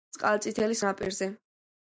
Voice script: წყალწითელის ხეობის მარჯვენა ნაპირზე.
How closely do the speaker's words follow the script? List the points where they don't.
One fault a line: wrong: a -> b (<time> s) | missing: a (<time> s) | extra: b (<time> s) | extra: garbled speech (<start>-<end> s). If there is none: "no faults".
missing: ხეობის მარჯვენა (0.8 s)